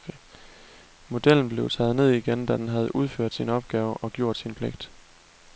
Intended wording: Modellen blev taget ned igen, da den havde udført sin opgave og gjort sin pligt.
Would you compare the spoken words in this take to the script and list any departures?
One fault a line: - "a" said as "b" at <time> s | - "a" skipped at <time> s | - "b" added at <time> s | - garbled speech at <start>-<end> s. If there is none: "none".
none